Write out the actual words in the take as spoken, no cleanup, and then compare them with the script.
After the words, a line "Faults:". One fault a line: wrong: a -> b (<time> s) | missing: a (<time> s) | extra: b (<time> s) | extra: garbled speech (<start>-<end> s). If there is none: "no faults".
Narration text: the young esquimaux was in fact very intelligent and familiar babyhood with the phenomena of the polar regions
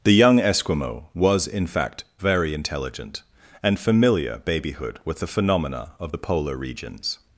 the young esquimaux was in fact very intelligent and familiar babyhood with the phenomena of the polar regions
Faults:
no faults